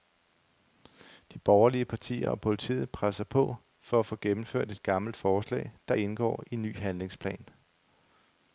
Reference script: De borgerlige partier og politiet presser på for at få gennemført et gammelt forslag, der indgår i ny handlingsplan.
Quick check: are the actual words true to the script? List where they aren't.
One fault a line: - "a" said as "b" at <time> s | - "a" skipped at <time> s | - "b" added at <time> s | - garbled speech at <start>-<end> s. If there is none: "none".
none